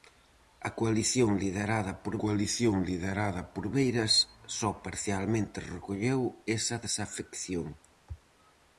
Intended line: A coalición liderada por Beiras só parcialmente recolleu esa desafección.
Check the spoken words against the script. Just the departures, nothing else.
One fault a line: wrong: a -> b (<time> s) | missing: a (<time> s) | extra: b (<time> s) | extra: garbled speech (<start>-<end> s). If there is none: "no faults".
extra: coalición liderada por (2.2 s)